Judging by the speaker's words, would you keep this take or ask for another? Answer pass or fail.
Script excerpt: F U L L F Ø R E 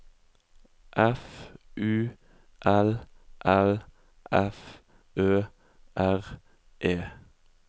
pass